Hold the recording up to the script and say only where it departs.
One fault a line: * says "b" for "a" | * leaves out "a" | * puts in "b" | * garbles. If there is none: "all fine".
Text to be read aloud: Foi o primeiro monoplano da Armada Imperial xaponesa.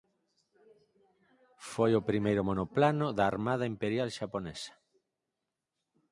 all fine